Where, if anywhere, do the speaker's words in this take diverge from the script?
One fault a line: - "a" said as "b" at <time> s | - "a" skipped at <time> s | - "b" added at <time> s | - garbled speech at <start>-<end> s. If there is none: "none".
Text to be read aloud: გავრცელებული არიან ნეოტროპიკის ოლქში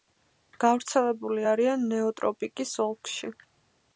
none